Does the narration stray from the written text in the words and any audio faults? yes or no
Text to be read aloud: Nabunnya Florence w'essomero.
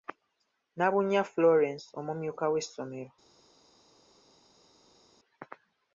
yes